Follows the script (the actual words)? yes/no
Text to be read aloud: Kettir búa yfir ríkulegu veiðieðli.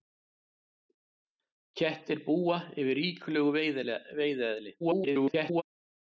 no